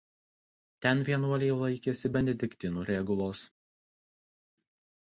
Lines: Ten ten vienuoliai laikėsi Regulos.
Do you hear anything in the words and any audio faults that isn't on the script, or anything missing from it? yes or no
yes